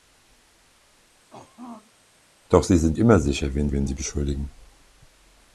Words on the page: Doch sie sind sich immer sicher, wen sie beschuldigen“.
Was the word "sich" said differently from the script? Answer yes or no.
yes